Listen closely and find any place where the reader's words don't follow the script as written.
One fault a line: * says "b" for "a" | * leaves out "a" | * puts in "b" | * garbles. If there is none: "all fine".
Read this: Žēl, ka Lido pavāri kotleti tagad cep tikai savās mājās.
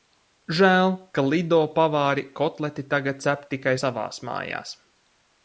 all fine